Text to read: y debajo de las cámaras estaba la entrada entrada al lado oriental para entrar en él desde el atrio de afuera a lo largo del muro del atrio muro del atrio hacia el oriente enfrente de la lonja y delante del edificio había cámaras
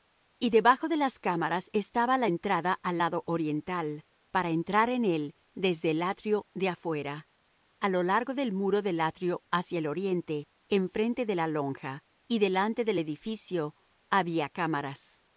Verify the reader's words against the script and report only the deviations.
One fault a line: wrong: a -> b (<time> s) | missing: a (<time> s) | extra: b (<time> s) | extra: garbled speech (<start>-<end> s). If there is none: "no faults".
missing: entrada (2.8 s)
missing: muro del atrio (9.4 s)